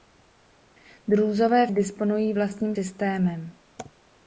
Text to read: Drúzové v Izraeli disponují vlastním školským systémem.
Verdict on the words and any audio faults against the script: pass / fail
fail